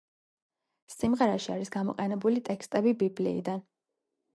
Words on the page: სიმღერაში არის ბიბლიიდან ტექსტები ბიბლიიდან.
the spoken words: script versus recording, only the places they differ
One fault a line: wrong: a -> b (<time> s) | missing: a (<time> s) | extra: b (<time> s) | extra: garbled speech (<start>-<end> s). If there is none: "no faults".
wrong: ბიბლიიდან -> გამოყენებული (1.8 s)